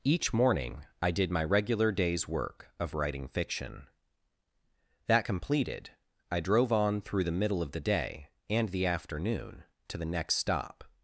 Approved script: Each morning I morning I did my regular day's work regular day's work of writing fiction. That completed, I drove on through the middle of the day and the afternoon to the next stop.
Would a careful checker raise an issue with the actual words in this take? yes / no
yes